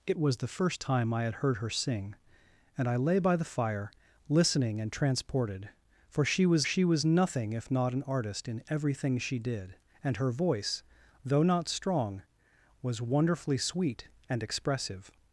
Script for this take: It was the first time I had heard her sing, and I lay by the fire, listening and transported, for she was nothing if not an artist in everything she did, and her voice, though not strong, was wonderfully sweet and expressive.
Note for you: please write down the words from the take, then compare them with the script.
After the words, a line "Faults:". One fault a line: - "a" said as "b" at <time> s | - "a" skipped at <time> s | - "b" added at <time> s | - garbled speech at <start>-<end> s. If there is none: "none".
It was the first time I had heard her sing, and I lay by the fire, listening and transported, for she was she was nothing if not an artist in everything she did, and her voice, though not strong, was wonderfully sweet and expressive.
Faults:
- "she was" added at 6.6 s